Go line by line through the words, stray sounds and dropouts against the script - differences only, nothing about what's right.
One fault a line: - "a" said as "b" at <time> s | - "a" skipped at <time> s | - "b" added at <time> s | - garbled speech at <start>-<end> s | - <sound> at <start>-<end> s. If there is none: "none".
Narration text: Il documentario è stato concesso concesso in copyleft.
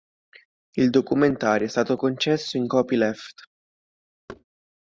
- "concesso" skipped at 2.6 s
- thud at 4.3-4.4 s